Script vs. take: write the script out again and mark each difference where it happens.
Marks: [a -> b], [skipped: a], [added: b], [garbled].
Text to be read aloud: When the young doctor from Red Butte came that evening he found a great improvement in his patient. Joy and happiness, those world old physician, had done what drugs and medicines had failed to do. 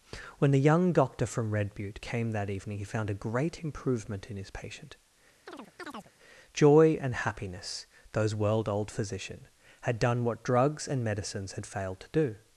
When the young doctor from Red Butte came that evening he found a great improvement in his patient. Joy and happiness, those world old physician, had done what drugs and medicines had failed to do.